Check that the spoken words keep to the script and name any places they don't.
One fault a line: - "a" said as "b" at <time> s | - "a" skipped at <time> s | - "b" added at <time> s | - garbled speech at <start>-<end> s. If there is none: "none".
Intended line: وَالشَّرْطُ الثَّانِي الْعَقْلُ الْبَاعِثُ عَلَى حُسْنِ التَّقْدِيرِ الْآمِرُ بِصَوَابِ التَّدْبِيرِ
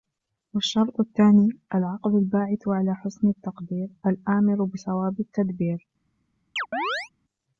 none